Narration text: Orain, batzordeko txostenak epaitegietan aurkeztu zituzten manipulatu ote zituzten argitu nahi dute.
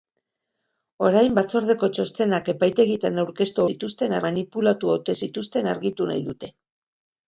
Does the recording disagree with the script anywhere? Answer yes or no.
no